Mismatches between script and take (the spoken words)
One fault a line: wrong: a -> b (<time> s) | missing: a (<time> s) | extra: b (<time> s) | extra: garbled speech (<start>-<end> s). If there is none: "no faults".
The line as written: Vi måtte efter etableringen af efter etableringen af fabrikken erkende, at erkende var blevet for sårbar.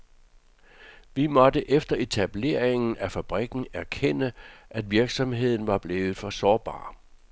missing: efter etableringen af (3.1 s)
wrong: erkende -> virksomheden (4.9 s)